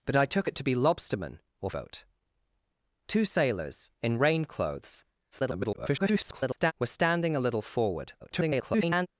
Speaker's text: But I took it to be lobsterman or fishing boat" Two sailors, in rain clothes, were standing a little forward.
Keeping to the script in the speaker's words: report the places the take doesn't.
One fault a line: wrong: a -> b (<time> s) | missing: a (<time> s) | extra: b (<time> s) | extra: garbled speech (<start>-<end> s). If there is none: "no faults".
missing: fishing (1.7 s)
extra: garbled speech (5.3-6.7 s)
extra: garbled speech (8.2-9.1 s)